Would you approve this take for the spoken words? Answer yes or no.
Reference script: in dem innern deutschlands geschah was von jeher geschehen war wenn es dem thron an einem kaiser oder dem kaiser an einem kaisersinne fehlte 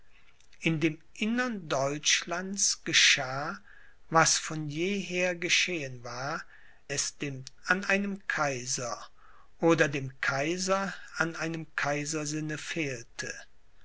no